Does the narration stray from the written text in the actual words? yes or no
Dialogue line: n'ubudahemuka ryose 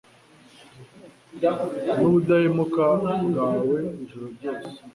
yes